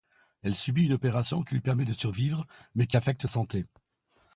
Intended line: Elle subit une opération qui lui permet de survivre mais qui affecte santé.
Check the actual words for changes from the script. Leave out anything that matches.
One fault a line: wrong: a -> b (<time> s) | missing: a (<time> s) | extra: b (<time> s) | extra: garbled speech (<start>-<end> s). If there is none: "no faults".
no faults